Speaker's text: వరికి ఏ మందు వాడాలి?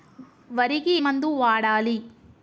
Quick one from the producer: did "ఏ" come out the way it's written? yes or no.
no